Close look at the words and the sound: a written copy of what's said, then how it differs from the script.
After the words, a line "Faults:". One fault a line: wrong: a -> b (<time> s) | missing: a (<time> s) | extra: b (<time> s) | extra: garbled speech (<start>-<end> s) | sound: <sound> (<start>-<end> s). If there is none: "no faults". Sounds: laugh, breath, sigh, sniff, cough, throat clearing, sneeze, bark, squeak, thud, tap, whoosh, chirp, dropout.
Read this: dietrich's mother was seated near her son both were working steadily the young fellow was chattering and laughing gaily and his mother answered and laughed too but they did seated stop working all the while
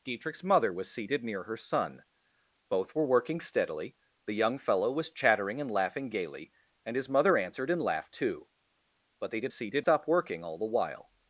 dietrich's mother was seated near her son both were working steadily the young fellow was chattering and laughing gaily and his mother answered and laughed too but they did seated stop working all the while
Faults:
no faults